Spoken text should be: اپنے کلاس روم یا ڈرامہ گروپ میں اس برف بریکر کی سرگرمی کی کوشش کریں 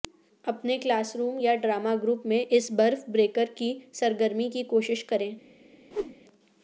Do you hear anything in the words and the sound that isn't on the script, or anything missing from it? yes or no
yes